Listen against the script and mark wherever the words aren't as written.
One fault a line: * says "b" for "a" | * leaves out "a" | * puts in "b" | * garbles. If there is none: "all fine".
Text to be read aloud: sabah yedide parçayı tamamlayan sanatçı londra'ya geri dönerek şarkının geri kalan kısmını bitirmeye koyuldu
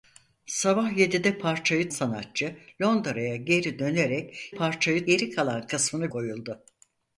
* leaves out "tamamlayan"
* says "parçayı" for "şarkının"
* leaves out "bitirmeye"